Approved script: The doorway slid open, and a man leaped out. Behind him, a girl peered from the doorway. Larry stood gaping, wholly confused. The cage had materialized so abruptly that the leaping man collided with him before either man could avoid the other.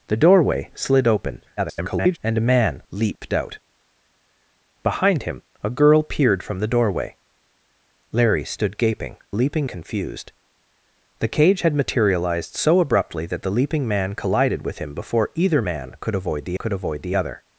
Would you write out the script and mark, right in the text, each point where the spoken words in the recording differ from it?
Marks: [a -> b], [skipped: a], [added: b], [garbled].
The doorway slid open, [garbled] and a man leaped out. Behind him, a girl peered from the doorway. Larry stood gaping, [wholly -> leaping] confused. The cage had materialized so abruptly that the leaping man collided with him before either man could avoid the [added: could avoid the] other.